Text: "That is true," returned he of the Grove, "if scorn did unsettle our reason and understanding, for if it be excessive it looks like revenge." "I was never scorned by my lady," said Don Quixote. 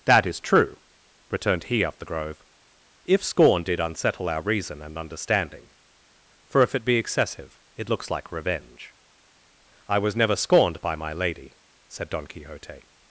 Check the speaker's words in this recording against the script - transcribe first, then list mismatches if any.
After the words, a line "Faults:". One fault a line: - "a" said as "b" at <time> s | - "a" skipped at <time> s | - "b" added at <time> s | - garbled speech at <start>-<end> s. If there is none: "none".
"That is true," returned he of the Grove, "if scorn did unsettle our reason and understanding, for if it be excessive it looks like revenge." "I was never scorned by my lady," said Don Quixote.
Faults:
none